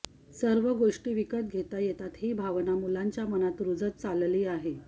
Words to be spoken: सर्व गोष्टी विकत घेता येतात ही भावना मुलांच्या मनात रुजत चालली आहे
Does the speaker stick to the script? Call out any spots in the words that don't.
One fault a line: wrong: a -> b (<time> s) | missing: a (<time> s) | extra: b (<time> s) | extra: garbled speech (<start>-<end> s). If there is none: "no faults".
no faults